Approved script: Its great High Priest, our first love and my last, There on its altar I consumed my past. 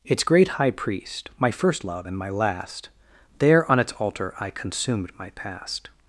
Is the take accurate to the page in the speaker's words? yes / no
no